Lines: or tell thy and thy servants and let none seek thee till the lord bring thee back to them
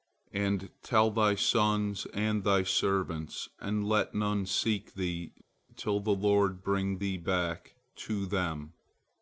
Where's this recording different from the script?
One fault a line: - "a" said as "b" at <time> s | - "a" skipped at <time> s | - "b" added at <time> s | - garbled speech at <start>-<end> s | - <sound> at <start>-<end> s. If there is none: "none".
- "or" said as "and" at 0.3 s
- "sons" added at 1.4 s